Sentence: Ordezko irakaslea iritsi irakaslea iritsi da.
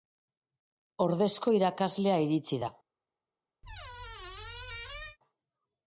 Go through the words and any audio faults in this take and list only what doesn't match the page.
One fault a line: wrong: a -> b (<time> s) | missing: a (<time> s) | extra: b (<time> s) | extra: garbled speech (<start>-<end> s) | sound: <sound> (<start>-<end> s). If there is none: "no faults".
missing: irakaslea iritsi (2.6 s)
sound: squeak (3.6-5.2 s)